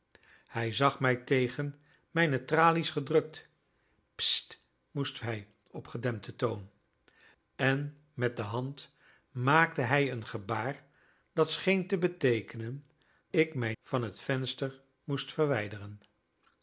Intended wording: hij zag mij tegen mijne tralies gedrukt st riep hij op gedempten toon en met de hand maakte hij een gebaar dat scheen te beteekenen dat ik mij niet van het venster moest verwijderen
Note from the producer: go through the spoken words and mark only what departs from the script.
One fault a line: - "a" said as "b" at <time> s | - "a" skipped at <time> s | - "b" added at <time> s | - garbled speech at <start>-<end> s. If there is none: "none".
- "riep" said as "moest" at 4.9 s
- "dat" skipped at 12.9 s
- "niet" skipped at 13.7 s